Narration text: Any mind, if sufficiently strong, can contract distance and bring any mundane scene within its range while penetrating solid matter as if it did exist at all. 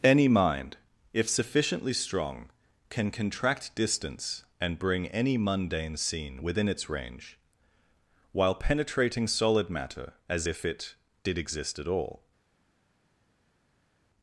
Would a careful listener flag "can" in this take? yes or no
no